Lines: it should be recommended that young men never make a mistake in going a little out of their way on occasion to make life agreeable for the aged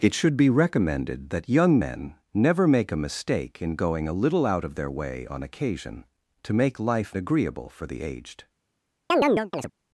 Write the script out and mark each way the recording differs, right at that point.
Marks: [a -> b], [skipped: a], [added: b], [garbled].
it should be recommended that young men never make a mistake in going a little out of their way on occasion to make life agreeable for the aged